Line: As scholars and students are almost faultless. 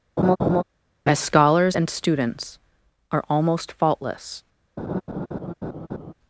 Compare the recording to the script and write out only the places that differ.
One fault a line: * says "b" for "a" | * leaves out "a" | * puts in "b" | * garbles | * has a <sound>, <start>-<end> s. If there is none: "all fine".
* has a laugh, 0.2-0.6 s
* has a laugh, 4.8-6.1 s